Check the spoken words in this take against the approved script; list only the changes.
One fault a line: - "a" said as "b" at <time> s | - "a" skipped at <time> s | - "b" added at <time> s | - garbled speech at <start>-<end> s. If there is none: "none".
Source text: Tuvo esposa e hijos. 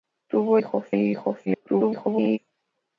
- "esposa" said as "hijos" at 0.6 s
- garbled speech at 1.5-2.4 s